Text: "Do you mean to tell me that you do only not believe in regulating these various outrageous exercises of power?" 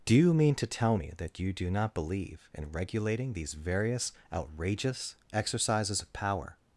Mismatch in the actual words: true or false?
true